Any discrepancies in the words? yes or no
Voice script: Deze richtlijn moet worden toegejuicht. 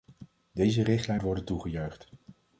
yes